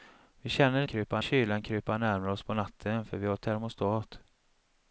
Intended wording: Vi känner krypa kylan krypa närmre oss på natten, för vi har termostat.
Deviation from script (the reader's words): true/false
false